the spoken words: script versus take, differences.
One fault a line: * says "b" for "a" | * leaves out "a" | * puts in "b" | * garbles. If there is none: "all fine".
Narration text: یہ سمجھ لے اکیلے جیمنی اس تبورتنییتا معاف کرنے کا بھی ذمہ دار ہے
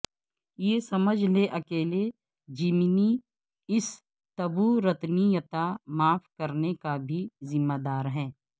all fine